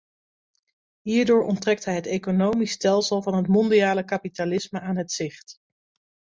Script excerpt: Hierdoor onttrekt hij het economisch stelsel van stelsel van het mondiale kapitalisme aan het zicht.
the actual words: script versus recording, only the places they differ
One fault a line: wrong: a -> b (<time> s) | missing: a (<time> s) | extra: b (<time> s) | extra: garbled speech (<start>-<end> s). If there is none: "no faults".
missing: stelsel van (3.3 s)